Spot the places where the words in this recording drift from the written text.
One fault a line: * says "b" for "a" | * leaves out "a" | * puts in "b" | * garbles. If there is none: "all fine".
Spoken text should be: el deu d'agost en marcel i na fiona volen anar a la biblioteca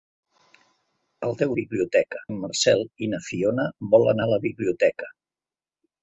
* says "biblioteca" for "d'agost"
* leaves out "anar"